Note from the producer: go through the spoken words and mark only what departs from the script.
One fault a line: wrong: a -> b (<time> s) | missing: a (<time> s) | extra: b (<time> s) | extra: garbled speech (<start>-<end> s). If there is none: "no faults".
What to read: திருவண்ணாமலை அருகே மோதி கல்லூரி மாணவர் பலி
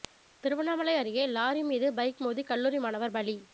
extra: லாரி மீது பைக் (1.3 s)